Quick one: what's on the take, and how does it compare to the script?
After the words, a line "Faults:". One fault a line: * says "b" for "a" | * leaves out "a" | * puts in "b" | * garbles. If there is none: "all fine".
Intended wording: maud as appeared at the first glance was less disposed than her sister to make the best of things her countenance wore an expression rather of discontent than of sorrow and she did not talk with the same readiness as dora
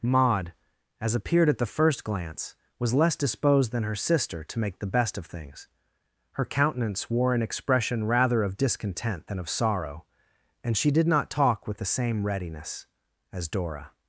maud as appeared at the first glance was less disposed than her sister to make the best of things her countenance wore an expression rather of discontent than of sorrow and she did not talk with the same readiness as dora
Faults:
all fine